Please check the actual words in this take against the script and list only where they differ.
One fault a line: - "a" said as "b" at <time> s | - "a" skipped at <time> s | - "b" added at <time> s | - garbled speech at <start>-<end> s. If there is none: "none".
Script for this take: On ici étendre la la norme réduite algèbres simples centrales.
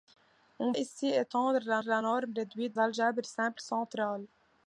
none